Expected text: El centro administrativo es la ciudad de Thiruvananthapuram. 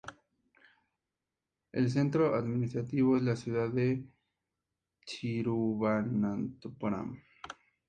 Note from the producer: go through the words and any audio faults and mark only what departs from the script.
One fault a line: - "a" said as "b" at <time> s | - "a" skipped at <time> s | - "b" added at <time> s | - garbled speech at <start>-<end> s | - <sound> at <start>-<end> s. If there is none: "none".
none